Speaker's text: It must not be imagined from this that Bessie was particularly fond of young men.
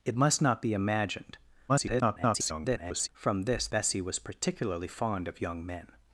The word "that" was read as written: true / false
false